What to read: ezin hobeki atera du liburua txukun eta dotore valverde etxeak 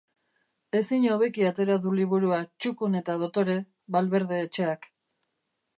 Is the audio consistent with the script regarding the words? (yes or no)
yes